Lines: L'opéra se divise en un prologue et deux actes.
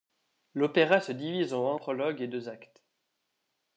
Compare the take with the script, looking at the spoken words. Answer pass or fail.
pass